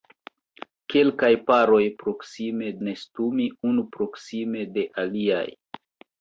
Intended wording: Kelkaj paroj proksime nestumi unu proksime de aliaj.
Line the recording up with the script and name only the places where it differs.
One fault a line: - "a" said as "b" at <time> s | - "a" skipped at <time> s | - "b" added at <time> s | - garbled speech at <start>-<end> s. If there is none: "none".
none